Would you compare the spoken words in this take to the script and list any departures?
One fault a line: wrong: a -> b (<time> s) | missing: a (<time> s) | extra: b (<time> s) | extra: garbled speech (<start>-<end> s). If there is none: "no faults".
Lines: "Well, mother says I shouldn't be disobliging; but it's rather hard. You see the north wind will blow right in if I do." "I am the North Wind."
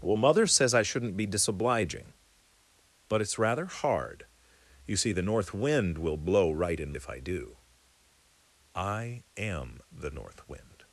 no faults